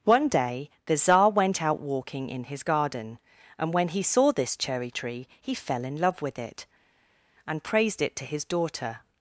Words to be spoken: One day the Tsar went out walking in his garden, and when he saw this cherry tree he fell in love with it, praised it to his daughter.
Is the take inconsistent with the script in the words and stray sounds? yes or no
yes